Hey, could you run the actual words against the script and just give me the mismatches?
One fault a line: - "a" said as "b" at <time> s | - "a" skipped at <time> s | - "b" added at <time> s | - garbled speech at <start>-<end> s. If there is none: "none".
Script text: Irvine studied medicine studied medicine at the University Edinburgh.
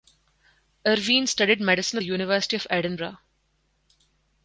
- "studied medicine" skipped at 2.0 s
- "of" added at 2.6 s